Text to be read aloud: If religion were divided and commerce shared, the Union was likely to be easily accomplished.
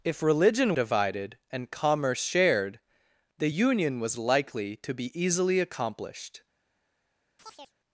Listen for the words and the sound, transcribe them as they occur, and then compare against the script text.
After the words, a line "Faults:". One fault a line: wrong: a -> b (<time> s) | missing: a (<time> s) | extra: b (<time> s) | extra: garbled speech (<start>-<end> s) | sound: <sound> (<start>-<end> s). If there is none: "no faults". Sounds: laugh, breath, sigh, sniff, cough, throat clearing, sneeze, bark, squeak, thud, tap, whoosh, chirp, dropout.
If religion divided and commerce shared, the Union was likely to be easily accomplished.
Faults:
missing: were (0.7 s)
sound: chirp (7.4-7.7 s)